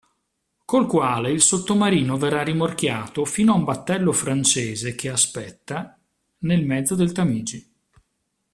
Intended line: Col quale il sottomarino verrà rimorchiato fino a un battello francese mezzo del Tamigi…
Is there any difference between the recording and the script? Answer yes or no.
yes